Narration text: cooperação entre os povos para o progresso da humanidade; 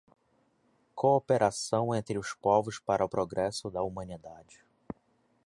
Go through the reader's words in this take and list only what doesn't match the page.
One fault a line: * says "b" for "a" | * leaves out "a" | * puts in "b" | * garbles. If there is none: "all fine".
all fine